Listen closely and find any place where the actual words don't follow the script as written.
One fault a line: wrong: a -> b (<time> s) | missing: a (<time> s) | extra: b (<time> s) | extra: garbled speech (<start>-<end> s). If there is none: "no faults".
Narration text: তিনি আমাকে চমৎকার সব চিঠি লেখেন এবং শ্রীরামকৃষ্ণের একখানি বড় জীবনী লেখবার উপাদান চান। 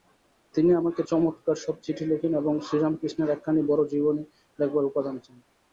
no faults